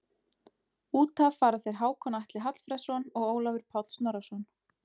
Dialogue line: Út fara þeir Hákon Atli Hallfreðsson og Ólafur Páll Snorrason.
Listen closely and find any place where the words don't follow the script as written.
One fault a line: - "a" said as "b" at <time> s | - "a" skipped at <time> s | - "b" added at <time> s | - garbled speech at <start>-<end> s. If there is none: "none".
- "af" added at 1.2 s